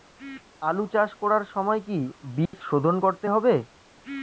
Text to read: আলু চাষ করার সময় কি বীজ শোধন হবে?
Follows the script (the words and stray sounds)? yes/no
no